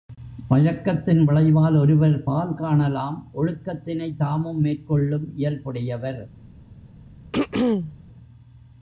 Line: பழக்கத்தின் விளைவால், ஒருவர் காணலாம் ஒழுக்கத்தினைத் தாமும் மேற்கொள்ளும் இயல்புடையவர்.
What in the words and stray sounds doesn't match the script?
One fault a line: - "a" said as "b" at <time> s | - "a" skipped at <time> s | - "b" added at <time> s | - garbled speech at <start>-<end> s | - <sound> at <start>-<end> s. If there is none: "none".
- "பால்" added at 2.2 s
- throat clearing at 7.3-8.0 s